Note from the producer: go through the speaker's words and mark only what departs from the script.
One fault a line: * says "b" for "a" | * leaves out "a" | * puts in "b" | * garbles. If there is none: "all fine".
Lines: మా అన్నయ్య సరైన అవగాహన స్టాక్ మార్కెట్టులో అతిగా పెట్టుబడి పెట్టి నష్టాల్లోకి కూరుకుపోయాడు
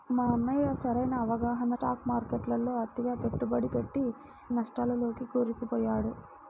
all fine